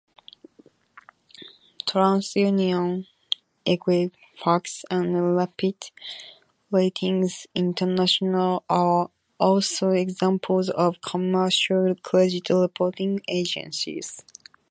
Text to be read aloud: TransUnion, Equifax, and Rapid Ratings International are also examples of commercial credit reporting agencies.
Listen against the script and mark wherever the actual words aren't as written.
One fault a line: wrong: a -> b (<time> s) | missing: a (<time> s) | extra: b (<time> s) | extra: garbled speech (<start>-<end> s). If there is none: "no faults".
no faults